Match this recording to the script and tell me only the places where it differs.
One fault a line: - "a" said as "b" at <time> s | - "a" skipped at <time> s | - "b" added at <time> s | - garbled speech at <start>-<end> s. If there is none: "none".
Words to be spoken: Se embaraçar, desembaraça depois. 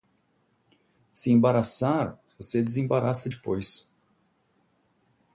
- "você" added at 2.4 s